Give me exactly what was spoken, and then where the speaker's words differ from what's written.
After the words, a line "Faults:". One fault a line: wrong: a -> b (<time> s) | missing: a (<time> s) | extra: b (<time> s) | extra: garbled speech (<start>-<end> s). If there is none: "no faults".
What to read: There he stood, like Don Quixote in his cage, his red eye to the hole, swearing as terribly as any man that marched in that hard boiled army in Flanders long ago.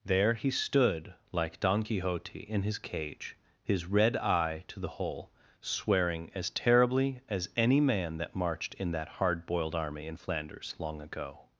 There he stood, like Don Quixote in his cage, his red eye to the hole, swearing as terribly as any man that marched in that hard boiled army in Flanders long ago.
Faults:
no faults